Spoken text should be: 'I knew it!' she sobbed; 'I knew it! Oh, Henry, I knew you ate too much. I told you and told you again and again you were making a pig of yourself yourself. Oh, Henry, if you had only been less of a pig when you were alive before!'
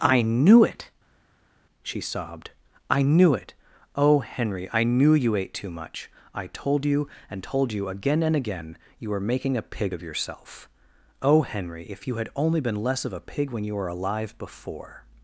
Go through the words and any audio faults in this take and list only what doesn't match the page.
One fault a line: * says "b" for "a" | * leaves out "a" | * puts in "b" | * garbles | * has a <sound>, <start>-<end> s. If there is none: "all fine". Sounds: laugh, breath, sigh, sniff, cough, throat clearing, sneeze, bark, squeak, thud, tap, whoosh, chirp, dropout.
* leaves out "yourself"